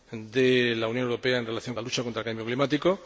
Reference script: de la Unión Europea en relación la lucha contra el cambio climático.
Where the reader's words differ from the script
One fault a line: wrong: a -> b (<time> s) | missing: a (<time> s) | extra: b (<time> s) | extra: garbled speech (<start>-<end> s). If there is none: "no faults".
no faults